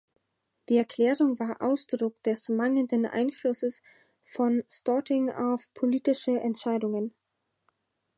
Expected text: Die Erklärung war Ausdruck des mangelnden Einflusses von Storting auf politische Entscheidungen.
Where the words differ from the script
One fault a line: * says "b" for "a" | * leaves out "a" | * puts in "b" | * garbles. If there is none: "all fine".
all fine